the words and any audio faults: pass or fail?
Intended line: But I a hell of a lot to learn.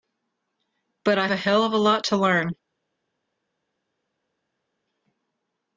pass